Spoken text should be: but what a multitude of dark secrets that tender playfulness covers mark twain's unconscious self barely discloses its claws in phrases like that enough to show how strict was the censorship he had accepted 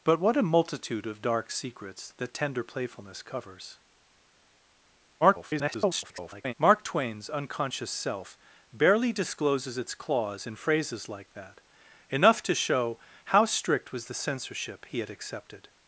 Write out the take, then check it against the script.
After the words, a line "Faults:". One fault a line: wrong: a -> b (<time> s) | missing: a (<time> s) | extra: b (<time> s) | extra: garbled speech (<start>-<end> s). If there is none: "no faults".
but what a multitude of dark secrets that tender playfulness covers [garbled] mark twain's unconscious self barely discloses its claws in phrases like that enough to show how strict was the censorship he had accepted
Faults:
extra: garbled speech (5.2-6.5 s)